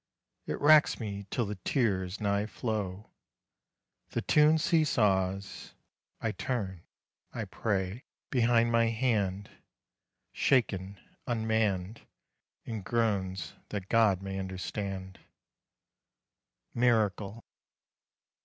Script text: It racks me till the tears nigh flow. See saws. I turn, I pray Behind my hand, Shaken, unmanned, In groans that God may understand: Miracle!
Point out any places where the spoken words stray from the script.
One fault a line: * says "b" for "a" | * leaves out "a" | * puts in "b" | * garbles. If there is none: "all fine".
* puts in "The tune"